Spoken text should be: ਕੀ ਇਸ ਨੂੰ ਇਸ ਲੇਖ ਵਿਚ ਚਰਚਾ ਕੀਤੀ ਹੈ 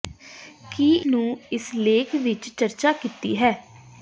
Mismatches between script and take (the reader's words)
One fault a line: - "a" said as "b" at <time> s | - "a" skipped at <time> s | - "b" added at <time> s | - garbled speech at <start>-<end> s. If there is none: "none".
- "ਇਸ" skipped at 0.9 s